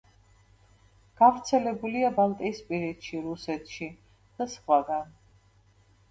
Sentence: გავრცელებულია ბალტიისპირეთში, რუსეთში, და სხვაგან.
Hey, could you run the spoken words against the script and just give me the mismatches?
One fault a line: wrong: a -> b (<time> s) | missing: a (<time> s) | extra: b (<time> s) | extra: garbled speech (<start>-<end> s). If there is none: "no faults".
no faults